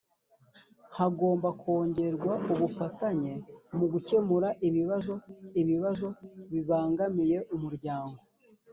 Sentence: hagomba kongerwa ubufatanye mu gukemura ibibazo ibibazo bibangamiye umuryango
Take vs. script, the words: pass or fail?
pass